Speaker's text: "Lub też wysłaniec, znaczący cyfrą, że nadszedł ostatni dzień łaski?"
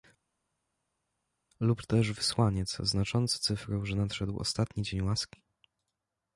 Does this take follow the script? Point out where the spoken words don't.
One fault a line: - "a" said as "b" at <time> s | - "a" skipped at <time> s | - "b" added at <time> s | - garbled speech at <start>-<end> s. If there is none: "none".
none